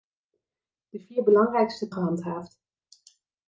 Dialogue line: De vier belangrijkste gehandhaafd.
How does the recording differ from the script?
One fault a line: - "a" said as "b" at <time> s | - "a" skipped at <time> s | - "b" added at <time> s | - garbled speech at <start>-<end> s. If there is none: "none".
none